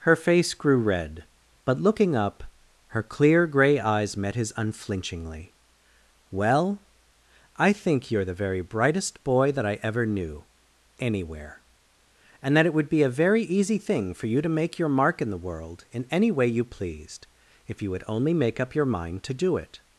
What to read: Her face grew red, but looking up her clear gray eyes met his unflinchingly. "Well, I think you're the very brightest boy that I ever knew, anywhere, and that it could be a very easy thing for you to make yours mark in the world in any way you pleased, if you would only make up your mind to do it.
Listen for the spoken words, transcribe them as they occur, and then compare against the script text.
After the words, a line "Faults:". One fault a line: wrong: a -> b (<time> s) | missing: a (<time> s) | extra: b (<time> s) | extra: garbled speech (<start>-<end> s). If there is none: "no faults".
Her face grew red, but looking up her clear gray eyes met his unflinchingly. "Well, I think you're the very brightest boy that I ever knew, anywhere, and that it would be a very easy thing for you to make your mark in the world in any way you pleased, if you would only make up your mind to do it.
Faults:
wrong: could -> would (12.7 s)
wrong: yours -> your (14.8 s)